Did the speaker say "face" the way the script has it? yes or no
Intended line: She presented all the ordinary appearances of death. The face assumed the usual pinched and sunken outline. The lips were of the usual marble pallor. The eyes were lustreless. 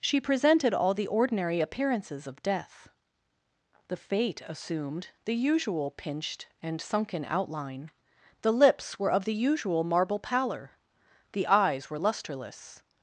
no